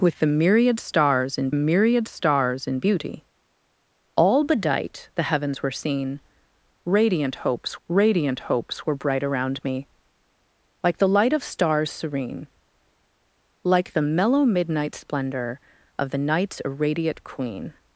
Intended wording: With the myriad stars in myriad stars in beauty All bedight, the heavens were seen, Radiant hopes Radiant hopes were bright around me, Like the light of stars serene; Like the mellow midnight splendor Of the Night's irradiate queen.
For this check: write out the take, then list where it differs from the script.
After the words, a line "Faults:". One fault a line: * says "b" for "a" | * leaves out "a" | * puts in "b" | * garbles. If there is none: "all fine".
With the myriad stars in myriad stars in beauty All bedight, the heavens were seen, Radiant hopes Radiant hopes were bright around me, Like the light of stars serene; Like the mellow midnight splendor Of the Night's irradiate queen.
Faults:
all fine